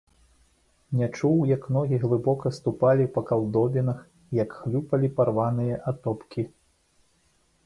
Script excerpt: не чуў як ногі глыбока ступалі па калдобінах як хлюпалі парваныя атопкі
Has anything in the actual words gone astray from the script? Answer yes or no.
no